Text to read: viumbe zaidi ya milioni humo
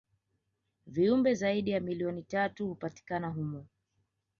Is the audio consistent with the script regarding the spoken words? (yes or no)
no